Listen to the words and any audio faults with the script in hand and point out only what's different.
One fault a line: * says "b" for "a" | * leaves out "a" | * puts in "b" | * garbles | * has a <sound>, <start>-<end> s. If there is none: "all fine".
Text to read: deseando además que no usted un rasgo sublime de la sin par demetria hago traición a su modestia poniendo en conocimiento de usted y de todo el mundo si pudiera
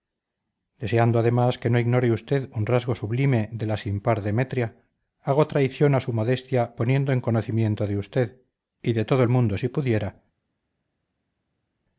* puts in "ignore"